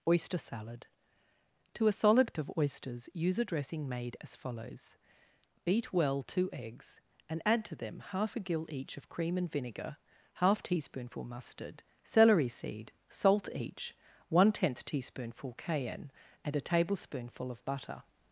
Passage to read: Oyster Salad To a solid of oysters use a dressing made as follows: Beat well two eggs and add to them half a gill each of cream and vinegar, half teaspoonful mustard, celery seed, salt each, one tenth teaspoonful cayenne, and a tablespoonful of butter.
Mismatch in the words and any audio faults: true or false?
false